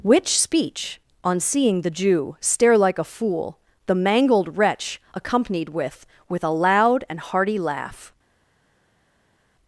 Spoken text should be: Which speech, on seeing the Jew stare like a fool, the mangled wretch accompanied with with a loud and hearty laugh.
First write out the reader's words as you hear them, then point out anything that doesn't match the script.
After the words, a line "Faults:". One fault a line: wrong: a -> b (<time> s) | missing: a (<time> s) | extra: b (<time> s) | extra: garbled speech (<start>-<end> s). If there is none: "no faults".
Which speech, on seeing the Jew stare like a fool, the mangled wretch accompanied with with a loud and hearty laugh.
Faults:
no faults